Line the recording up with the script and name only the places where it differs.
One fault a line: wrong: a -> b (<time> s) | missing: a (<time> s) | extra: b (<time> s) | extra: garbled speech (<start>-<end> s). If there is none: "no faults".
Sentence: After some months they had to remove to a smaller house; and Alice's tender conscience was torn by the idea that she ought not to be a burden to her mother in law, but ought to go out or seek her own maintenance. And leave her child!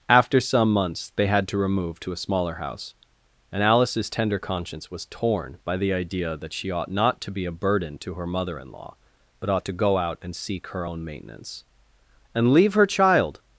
wrong: or -> and (10.2 s)